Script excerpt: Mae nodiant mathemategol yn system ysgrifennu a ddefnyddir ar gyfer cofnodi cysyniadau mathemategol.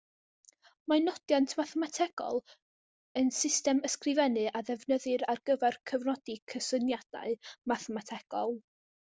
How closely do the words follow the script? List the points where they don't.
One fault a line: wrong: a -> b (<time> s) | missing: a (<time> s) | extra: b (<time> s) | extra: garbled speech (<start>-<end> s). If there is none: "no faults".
no faults